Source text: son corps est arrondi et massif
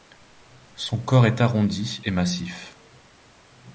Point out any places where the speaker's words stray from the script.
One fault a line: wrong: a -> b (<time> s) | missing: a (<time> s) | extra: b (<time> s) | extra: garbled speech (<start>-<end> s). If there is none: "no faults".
no faults